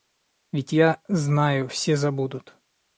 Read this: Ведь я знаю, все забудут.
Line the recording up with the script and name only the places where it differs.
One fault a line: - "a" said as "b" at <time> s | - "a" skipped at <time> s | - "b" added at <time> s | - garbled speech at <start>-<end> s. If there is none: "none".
none